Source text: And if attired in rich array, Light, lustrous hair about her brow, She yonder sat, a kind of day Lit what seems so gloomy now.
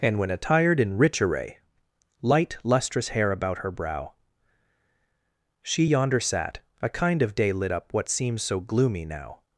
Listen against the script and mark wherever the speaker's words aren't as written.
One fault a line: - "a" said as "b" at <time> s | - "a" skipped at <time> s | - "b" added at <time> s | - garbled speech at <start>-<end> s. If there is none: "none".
- "if" said as "when" at 0.2 s
- "up" added at 7.7 s